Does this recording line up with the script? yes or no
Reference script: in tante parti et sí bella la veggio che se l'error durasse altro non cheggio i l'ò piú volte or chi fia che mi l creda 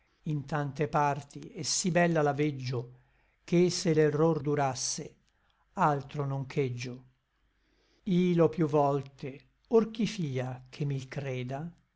yes